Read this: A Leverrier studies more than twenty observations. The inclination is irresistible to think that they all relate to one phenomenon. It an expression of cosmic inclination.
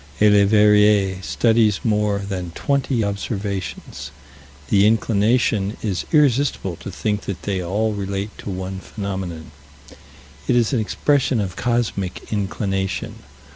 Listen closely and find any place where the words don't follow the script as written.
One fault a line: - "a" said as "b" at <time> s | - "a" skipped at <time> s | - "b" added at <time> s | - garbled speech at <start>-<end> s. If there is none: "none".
- "is" added at 10.5 s